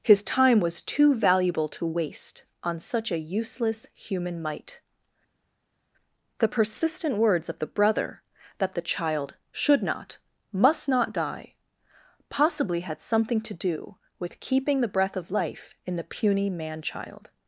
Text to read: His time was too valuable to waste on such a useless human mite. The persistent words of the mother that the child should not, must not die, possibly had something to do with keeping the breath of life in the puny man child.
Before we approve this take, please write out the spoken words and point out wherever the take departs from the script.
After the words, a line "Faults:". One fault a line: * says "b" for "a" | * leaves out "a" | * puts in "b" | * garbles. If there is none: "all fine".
His time was too valuable to waste on such a useless human mite. The persistent words of the brother that the child should not, must not die, possibly had something to do with keeping the breath of life in the puny man child.
Faults:
* says "brother" for "mother"